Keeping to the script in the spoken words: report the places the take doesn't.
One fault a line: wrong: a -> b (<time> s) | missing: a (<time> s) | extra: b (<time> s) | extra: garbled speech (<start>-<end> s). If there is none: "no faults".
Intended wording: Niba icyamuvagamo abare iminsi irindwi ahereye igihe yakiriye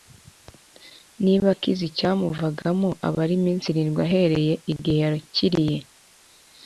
extra: akize (1.6 s)